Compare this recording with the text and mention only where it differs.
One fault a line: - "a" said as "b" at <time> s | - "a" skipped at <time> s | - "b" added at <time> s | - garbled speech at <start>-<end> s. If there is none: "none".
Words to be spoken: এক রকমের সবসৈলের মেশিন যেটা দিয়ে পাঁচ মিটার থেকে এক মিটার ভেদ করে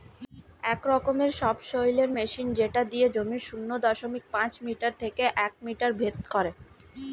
- "জমির শূন্য দশমিক" added at 3.1 s